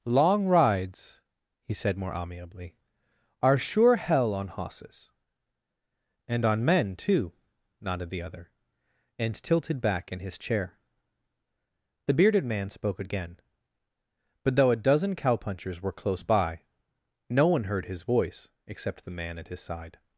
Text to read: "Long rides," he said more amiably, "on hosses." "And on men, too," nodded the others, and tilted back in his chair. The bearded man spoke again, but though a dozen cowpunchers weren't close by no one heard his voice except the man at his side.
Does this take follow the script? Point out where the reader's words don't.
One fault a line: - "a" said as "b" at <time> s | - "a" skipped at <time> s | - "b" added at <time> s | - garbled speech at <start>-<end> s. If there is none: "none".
- "are sure hell" added at 3.4 s
- "others" said as "other" at 8.2 s
- "weren't" said as "were" at 15.8 s